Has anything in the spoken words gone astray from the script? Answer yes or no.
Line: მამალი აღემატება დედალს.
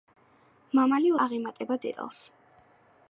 no